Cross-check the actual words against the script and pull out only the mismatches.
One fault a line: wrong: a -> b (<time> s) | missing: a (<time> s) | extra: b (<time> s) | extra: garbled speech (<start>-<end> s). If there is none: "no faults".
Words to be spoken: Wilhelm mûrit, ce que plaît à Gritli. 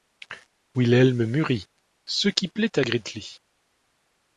wrong: que -> qui (2.3 s)